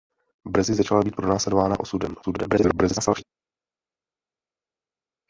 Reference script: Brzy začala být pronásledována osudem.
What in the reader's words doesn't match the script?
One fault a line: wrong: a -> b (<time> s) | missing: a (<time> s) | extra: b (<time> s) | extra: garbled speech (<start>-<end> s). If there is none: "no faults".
extra: garbled speech (2.2-3.2 s)